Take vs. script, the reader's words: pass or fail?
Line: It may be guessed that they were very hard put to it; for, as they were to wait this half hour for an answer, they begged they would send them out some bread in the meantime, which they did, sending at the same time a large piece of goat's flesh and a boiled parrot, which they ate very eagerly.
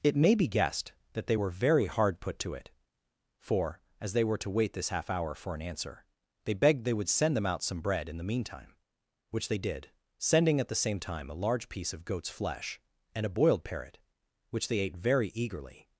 pass